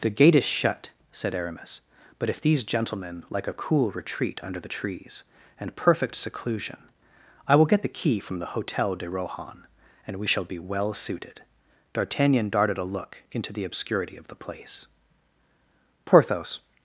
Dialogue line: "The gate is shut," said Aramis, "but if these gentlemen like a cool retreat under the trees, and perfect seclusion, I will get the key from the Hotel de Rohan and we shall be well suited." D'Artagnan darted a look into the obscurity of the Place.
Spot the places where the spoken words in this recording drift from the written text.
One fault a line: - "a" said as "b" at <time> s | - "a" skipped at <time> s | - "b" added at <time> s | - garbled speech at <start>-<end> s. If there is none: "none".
- "Porthos" added at 16.0 s